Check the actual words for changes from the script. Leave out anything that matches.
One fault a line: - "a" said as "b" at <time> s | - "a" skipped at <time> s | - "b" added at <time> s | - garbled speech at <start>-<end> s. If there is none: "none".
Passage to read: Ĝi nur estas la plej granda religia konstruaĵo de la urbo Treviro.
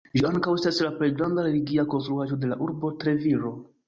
- "nur" said as "ankaŭ" at 0.3 s